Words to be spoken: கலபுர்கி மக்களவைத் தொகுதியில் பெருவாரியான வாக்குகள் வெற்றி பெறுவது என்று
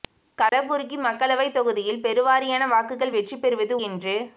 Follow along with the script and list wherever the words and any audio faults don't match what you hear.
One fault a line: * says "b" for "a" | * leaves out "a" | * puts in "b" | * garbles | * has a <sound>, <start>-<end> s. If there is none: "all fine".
* has a dropout, 0.5-0.5 s